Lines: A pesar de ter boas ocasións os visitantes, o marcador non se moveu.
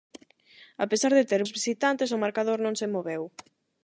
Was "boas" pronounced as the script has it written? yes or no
no